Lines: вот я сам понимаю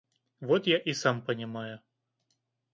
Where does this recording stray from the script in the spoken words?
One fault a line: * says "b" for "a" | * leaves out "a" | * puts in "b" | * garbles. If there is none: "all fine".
* puts in "и"